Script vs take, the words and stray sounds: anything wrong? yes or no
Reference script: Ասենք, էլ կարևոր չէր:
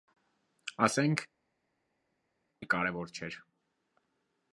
no